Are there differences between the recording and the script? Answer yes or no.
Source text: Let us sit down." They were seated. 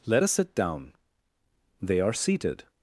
yes